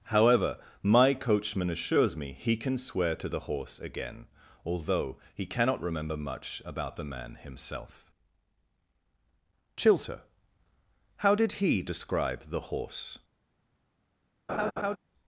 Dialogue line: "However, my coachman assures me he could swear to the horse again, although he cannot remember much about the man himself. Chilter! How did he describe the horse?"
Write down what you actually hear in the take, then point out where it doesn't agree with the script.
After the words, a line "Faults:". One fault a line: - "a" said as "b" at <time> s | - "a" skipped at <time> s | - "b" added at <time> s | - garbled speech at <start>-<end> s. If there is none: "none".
"However, my coachman assures me he can swear to the horse again, although he cannot remember much about the man himself. Chilter! How did he describe the horse?"
Faults:
- "could" said as "can" at 2.6 s